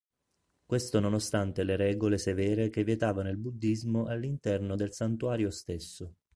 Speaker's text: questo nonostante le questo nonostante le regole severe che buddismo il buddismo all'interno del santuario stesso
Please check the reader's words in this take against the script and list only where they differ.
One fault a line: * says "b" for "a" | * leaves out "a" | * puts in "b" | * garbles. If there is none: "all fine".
* leaves out "questo nonostante le"
* says "vietavano" for "buddismo"